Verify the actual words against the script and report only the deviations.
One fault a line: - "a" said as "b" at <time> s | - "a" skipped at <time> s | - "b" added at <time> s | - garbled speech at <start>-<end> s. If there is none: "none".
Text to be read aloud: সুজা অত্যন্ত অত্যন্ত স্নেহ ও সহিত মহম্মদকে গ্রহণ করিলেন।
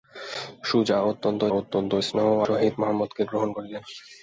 none